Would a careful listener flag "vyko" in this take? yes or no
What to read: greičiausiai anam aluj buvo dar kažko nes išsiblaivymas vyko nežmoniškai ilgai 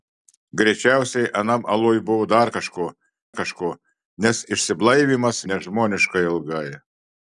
yes